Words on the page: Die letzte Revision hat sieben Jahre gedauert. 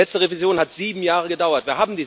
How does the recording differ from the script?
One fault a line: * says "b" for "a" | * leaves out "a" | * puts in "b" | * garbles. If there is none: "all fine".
all fine